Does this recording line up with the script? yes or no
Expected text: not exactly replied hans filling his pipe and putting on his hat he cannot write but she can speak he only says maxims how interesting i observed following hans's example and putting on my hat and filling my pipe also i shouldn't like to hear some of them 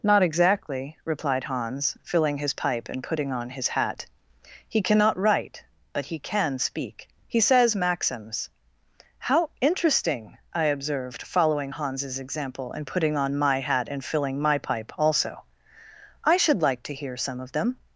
no